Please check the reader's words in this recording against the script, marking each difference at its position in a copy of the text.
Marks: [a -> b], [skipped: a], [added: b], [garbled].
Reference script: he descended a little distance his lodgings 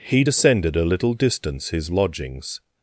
he descended a little distance his lodgings